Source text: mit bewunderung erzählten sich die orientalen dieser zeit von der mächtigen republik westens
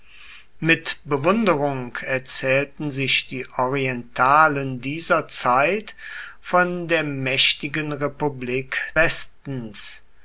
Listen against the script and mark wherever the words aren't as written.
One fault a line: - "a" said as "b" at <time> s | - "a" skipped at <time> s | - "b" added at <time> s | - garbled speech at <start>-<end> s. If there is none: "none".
none